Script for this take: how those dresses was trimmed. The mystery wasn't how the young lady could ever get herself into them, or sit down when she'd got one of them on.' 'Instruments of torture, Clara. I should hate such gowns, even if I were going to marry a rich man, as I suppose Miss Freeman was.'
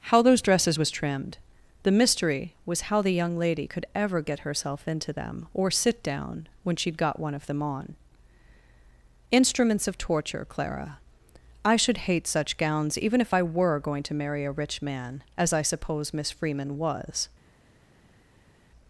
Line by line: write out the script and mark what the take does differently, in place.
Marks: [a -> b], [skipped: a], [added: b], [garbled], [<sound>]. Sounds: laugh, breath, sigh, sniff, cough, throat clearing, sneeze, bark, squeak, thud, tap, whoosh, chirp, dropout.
how those dresses was trimmed. The mystery [wasn't -> was] how the young lady could ever get herself into them, or sit down when she'd got one of them on.' 'Instruments of torture, Clara. I should hate such gowns, even if I were going to marry a rich man, as I suppose Miss Freeman was.'